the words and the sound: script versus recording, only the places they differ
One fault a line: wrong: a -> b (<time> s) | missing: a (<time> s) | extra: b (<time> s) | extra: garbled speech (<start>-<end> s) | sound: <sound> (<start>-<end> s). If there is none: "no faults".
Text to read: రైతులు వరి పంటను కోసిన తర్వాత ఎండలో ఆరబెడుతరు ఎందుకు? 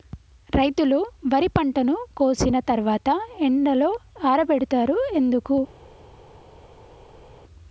no faults